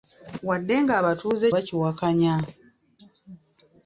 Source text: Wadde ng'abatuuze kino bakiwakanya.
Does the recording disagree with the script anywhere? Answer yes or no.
yes